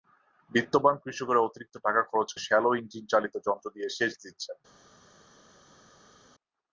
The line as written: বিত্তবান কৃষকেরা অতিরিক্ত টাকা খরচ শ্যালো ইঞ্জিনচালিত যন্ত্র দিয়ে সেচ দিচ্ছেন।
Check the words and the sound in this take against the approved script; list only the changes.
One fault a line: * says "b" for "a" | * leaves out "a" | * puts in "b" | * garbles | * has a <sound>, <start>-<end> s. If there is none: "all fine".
all fine